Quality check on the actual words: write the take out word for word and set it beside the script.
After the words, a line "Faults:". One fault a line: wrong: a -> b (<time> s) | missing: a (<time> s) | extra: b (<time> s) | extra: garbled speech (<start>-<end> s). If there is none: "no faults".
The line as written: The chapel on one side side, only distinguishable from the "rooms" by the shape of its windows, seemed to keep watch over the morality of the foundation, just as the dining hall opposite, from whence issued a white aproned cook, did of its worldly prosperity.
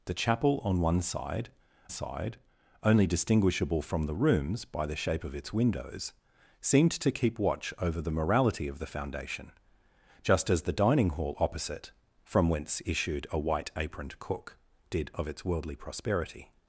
The chapel on one side side, only distinguishable from the "rooms" by the shape of its windows, seemed to keep watch over the morality of the foundation, just as the dining hall opposite, from whence issued a white aproned cook, did of its worldly prosperity.
Faults:
no faults